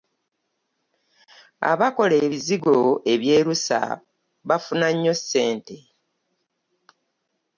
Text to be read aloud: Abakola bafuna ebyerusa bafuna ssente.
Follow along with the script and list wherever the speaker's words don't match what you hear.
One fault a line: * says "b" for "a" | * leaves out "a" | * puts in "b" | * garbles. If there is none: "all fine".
* says "ebizigo" for "bafuna"
* puts in "nnyo"